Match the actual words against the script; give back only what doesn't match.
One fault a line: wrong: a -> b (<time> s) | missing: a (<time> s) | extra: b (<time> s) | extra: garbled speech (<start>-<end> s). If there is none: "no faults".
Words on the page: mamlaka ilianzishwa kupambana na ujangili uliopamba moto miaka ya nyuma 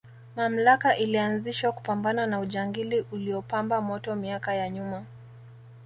no faults